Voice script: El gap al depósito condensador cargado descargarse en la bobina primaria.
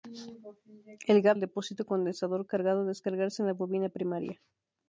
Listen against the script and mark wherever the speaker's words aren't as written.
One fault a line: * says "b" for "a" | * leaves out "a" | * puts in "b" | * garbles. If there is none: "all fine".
all fine